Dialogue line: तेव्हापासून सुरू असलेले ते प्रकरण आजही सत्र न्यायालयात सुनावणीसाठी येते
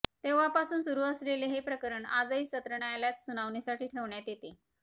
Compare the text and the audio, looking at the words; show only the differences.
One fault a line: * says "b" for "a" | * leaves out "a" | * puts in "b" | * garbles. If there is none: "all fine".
* says "हे" for "ते"
* puts in "ठेवण्यात"